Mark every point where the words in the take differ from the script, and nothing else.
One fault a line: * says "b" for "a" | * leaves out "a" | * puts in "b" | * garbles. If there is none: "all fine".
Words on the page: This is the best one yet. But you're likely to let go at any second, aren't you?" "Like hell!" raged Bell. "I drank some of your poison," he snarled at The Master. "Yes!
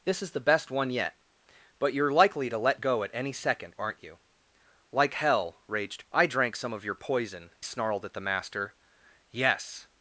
* leaves out "Bell"
* leaves out "he"